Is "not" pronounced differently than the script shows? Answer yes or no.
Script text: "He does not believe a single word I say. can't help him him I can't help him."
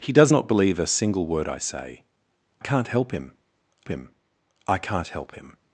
no